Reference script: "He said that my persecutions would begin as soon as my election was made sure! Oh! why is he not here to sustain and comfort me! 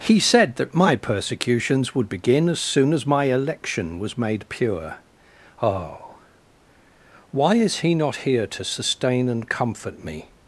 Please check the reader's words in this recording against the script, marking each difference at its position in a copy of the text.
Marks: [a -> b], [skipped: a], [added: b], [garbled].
"He said that my persecutions would begin as soon as my election was made [sure! -> pure] Oh! why is he not here to sustain and comfort me!